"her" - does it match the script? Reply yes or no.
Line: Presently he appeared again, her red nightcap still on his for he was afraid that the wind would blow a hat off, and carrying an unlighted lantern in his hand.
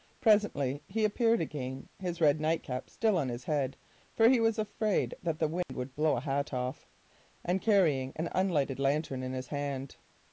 no